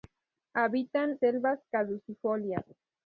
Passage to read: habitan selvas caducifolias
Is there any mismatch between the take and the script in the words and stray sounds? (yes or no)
no